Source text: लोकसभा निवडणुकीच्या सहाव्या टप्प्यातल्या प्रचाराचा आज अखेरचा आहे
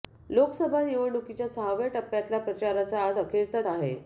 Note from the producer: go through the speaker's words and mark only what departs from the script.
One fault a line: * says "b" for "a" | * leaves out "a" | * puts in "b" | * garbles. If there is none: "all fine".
all fine